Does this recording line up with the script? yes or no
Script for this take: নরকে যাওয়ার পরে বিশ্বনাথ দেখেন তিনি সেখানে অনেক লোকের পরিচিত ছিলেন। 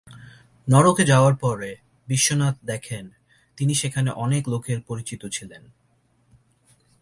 yes